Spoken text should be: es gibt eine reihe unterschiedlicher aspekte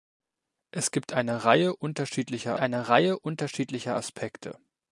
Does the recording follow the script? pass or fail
fail